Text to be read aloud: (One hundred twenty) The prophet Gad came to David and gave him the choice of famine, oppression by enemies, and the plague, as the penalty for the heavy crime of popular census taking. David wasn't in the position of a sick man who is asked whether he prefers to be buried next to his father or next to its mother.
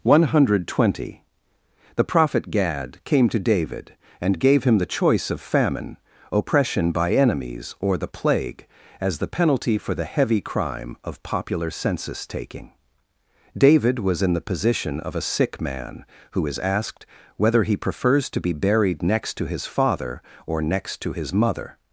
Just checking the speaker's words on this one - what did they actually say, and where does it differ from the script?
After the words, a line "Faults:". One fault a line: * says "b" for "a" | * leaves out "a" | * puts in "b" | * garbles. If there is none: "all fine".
(One hundred twenty) The prophet Gad came to David and gave him the choice of famine, oppression by enemies, or the plague, as the penalty for the heavy crime of popular census taking. David was in the position of a sick man who is asked whether he prefers to be buried next to his father or next to his mother.
Faults:
* says "or" for "and"
* says "was" for "wasn't"
* says "his" for "its"